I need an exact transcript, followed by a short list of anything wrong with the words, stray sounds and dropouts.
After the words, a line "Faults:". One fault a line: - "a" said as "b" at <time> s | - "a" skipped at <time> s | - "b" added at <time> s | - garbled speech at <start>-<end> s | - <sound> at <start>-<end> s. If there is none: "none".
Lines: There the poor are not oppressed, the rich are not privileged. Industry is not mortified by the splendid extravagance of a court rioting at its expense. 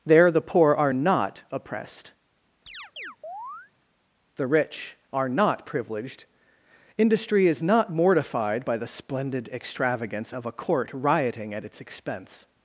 There the poor are not oppressed, the rich are not privileged. Industry is not mortified by the splendid extravagance of a court rioting at its expense.
Faults:
- chirp at 2.7-3.7 s